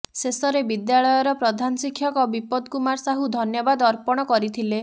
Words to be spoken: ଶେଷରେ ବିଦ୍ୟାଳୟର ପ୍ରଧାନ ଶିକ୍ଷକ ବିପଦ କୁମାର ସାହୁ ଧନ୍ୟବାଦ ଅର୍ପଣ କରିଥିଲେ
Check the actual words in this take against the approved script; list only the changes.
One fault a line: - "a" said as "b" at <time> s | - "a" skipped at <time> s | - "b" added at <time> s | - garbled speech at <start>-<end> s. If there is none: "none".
none